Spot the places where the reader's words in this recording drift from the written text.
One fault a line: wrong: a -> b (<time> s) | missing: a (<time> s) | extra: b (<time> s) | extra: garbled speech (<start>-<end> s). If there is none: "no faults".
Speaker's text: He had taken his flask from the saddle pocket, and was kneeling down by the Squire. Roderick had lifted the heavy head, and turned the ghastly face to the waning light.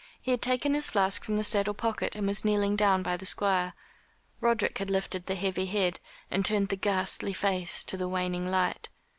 no faults